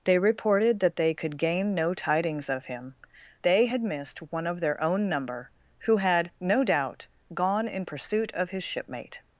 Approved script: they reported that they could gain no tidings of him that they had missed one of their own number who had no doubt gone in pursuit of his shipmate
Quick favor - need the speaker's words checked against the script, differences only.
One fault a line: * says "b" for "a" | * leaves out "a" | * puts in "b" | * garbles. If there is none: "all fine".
* leaves out "that"